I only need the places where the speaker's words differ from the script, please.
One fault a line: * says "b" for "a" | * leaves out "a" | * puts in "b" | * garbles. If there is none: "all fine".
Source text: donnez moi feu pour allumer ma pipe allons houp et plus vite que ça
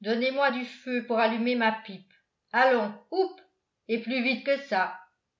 * puts in "du"